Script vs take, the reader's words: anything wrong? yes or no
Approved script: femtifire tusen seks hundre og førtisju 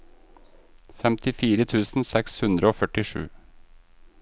no